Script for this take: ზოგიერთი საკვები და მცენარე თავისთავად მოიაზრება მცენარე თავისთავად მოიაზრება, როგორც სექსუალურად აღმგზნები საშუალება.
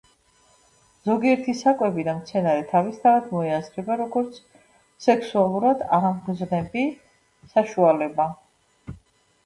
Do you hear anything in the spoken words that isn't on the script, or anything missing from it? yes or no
yes